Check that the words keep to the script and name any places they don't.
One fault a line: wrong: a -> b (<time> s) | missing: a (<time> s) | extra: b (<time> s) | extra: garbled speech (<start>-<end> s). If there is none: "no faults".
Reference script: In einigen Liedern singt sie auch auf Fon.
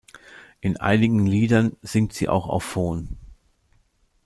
no faults